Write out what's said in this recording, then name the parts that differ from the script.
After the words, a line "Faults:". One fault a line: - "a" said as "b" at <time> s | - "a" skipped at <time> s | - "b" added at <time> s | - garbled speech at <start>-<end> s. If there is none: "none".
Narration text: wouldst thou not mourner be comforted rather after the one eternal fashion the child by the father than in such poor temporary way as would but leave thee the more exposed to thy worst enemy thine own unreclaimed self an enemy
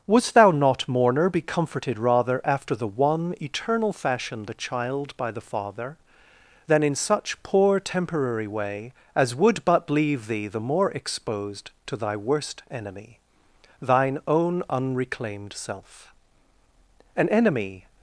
wouldst thou not mourner be comforted rather after the one eternal fashion the child by the father than in such poor temporary way as would but leave thee the more exposed to thy worst enemy thine own unreclaimed self an enemy
Faults:
none